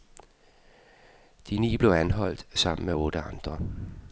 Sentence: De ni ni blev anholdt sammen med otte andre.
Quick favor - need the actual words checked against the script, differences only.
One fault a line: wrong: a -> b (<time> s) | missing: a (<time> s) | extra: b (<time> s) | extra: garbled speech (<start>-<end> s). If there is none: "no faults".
missing: ni (1.8 s)